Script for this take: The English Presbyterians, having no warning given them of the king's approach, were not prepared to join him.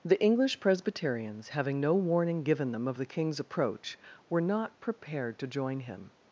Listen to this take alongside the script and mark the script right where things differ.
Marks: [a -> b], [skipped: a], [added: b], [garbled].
The English Presbyterians, having no warning given them of the king's approach, were not prepared to join him.